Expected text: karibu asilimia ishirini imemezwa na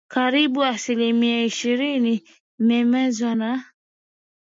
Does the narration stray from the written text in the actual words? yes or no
no